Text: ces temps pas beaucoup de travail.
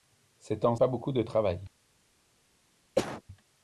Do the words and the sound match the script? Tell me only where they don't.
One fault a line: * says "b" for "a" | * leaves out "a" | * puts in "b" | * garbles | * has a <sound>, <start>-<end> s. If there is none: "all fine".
* has a cough, 3.0-3.2 s